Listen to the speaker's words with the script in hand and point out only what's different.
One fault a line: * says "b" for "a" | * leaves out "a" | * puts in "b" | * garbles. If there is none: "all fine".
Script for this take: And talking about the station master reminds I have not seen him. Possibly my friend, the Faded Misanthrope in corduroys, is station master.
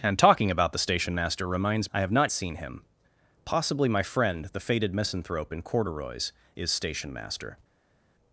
all fine